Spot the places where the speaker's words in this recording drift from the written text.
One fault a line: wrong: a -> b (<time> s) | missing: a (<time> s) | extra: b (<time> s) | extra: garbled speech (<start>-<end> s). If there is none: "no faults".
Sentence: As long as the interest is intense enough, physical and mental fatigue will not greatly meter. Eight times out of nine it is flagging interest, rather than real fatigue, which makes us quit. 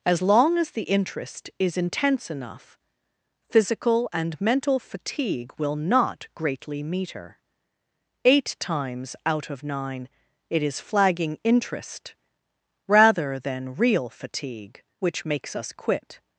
no faults